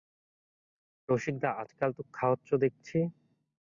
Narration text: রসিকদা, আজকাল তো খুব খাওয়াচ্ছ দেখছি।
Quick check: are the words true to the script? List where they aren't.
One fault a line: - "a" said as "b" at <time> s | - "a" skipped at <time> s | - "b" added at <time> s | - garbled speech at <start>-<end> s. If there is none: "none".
- "খুব" skipped at 2.0 s